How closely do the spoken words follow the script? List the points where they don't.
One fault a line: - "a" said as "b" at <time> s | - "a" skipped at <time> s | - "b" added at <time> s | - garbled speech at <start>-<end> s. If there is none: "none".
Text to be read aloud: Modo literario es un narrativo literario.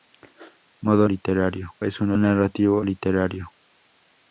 none